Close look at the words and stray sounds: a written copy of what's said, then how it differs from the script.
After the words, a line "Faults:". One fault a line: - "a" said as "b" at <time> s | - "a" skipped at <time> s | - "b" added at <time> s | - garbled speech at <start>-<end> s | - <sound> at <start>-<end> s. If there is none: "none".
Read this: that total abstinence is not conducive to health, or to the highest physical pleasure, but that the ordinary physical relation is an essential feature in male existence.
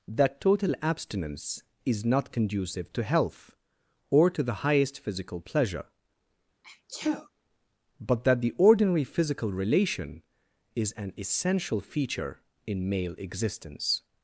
that total abstinence is not conducive to health, or to the highest physical pleasure, but that the ordinary physical relation is an essential feature in male existence.
Faults:
- sneeze at 6.6-7.3 s